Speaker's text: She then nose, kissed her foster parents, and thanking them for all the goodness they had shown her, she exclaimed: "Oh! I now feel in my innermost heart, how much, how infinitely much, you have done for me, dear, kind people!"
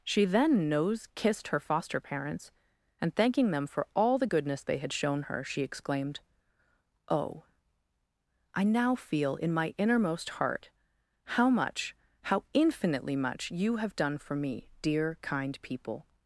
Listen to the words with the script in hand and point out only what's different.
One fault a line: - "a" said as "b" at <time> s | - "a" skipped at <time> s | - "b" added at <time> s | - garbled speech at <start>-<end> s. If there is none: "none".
none